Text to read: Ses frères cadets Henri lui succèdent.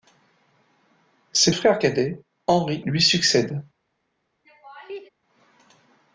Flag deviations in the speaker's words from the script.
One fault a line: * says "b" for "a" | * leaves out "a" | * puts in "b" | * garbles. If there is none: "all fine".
all fine